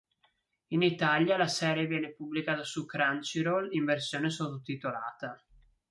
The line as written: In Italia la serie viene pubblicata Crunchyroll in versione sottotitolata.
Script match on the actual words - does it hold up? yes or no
no